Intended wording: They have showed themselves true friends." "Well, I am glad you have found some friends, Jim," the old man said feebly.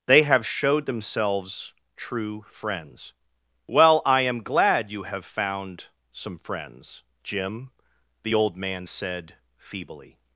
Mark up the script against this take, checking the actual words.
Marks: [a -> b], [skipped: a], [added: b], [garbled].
They have showed themselves true friends." "Well, I am glad you have found some friends, Jim," the old man said feebly.